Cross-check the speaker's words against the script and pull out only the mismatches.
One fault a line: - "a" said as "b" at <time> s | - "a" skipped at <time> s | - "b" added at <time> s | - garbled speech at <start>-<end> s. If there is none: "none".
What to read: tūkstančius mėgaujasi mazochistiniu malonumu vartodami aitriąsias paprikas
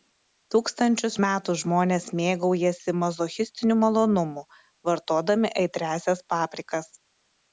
- "metų žmonės" added at 1.2 s